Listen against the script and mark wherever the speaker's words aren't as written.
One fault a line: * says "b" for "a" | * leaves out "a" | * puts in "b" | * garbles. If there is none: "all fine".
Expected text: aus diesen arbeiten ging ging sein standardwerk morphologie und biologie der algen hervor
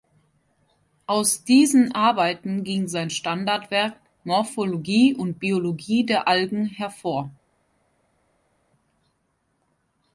* leaves out "ging"